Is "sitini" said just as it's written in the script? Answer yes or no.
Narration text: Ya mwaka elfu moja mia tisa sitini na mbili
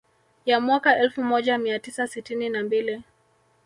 yes